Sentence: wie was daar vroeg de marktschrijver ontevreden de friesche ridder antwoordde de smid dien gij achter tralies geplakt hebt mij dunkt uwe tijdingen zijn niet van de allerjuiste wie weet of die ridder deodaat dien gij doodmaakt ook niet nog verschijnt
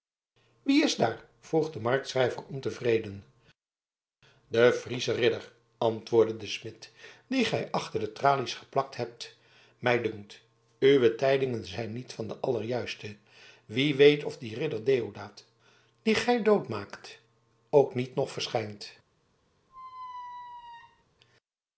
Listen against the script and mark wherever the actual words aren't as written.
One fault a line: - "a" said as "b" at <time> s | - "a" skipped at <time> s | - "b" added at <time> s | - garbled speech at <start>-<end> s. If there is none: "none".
- "was" said as "is" at 0.8 s
- "de" added at 8.0 s